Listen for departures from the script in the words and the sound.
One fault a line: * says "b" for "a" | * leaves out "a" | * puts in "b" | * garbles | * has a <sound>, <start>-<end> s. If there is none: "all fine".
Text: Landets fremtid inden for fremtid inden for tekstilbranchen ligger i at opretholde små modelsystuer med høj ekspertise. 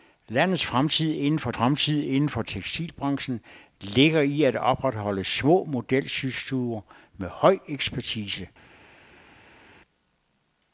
all fine